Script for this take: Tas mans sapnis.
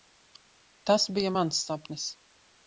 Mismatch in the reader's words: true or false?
true